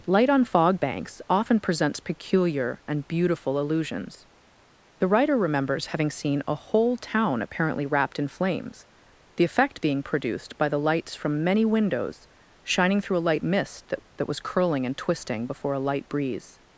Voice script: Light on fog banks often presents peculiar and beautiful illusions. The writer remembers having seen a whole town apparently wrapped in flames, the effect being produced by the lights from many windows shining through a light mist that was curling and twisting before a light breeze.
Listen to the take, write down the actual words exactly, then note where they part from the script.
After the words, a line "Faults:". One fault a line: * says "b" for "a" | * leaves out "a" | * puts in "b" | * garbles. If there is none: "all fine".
Light on fog banks often presents peculiar and beautiful illusions. The writer remembers having seen a whole town apparently wrapped in flames, the effect being produced by the lights from many windows shining through a light mist that that was curling and twisting before a light breeze.
Faults:
* puts in "that"